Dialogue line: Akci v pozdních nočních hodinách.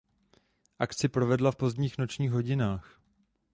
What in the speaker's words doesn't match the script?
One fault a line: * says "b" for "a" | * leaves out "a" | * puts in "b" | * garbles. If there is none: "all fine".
* puts in "provedla"